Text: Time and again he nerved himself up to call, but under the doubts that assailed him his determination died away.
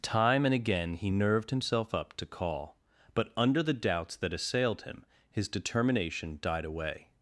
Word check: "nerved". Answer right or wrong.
right